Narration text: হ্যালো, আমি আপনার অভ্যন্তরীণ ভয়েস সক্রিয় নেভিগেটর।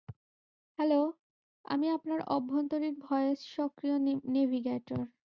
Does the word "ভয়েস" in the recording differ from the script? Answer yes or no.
no